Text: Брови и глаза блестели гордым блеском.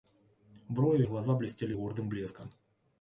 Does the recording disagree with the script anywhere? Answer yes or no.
no